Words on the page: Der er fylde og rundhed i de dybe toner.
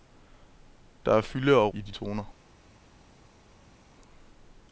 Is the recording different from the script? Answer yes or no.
yes